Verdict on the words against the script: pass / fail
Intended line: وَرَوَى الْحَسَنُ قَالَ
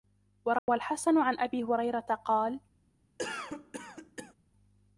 fail